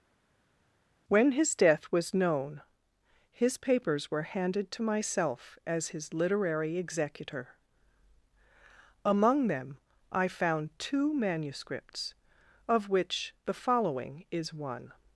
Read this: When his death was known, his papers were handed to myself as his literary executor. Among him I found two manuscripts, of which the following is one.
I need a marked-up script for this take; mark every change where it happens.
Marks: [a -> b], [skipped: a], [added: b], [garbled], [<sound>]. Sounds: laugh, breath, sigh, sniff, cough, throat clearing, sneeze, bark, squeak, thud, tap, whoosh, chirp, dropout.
When his death was known, his papers were handed to myself as his literary executor. Among [him -> them] I found two manuscripts, of which the following is one.